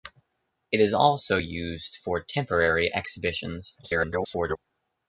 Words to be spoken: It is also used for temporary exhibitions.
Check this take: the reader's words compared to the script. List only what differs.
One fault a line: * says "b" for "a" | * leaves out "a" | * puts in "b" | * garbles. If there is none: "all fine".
* garbles